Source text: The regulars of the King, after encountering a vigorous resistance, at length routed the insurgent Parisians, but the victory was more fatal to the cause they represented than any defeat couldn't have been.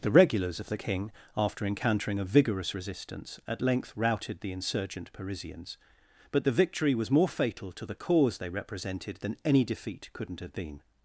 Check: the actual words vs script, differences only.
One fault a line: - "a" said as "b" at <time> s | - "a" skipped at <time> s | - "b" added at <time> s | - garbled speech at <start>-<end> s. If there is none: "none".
none